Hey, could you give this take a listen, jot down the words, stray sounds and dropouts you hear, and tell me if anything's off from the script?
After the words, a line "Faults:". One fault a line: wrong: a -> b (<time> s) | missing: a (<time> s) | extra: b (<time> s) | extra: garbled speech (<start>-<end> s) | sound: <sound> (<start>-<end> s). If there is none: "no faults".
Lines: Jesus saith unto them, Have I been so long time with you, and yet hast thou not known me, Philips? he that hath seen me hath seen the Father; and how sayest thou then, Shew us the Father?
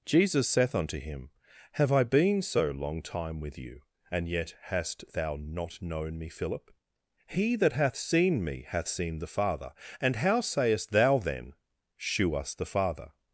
Jesus saith unto him, Have I been so long time with you, and yet hast thou not known me, Philip? he that hath seen me hath seen the Father; and how sayest thou then, Shew us the Father?
Faults:
wrong: them -> him (1.0 s)
wrong: Philips -> Philip (6.3 s)